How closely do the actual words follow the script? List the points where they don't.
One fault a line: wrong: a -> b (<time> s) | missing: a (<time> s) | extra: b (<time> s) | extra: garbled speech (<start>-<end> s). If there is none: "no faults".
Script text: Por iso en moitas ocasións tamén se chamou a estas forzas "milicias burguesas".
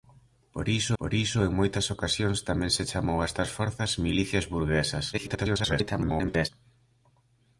extra: por iso (1.0 s)
extra: garbled speech (5.1-6.5 s)